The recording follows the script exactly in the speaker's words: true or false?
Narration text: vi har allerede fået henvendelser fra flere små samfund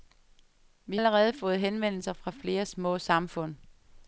false